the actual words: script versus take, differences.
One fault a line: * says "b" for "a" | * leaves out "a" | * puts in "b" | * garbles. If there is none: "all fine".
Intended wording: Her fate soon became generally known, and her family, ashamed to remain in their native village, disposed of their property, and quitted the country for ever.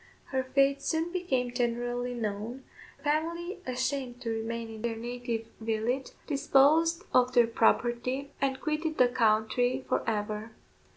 * leaves out "and her"